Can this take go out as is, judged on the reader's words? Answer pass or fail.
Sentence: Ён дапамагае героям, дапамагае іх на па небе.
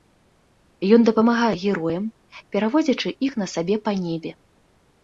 fail